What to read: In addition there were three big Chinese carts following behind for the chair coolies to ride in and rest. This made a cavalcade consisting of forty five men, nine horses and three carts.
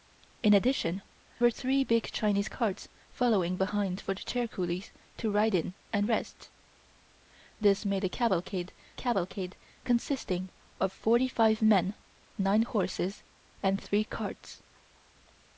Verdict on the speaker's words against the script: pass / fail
fail